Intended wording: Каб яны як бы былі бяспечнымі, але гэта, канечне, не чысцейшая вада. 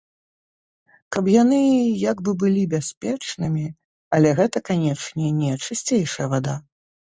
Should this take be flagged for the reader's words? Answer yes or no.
no